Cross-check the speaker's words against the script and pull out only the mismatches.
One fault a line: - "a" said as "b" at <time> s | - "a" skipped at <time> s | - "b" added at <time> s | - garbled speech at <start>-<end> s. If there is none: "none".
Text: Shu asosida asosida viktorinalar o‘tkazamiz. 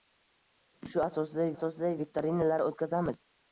none